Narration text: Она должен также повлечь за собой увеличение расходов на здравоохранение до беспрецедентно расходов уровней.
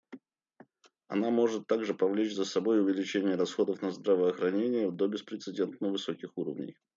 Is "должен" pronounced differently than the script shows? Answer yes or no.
yes